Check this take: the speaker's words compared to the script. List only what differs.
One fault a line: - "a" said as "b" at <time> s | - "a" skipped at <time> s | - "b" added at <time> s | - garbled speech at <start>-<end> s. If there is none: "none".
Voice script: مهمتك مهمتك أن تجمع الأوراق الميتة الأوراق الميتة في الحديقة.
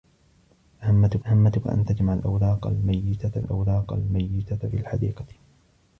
none